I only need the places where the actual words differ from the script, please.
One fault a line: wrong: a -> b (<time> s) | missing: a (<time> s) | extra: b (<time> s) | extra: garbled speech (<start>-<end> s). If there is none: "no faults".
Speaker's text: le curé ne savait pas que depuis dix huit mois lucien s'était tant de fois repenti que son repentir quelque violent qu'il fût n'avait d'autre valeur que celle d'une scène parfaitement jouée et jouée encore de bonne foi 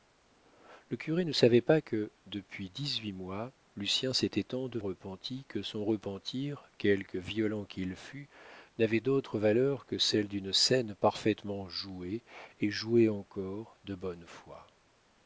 missing: fois (4.8 s)